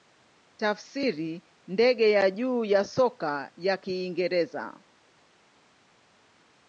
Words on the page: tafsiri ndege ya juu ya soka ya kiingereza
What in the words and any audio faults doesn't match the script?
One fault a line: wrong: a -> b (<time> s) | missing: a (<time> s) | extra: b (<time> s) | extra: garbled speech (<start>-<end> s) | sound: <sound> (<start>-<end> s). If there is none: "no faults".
no faults